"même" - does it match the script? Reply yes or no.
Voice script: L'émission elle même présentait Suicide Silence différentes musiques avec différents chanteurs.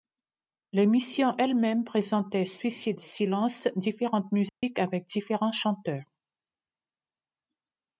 yes